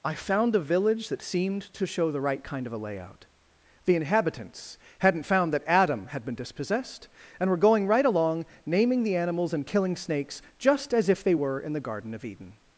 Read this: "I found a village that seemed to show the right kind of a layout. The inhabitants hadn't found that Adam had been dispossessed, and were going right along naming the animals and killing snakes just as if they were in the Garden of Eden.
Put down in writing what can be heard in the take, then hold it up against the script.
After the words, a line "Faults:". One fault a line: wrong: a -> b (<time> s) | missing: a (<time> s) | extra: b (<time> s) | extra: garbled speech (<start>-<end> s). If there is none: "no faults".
"I found a village that seemed to show the right kind of a layout. The inhabitants hadn't found that Adam had been dispossessed, and were going right along naming the animals and killing snakes just as if they were in the Garden of Eden.
Faults:
no faults